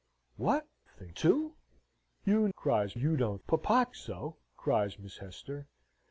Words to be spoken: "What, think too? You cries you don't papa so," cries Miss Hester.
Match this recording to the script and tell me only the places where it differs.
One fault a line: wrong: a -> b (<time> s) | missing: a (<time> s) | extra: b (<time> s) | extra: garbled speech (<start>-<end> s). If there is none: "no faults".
no faults